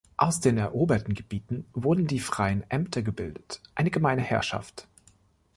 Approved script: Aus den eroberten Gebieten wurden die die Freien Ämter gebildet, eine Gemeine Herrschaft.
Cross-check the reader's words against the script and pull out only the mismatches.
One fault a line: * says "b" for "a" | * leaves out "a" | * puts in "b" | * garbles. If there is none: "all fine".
* leaves out "die"